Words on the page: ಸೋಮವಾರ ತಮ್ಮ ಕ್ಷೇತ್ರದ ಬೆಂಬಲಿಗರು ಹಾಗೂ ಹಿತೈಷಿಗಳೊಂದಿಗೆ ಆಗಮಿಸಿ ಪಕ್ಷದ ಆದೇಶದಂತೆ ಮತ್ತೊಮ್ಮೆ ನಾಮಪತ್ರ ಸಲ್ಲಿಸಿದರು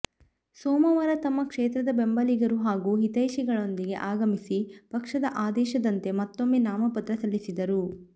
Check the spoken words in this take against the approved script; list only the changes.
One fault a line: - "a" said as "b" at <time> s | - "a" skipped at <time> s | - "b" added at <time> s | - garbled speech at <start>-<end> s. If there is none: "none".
none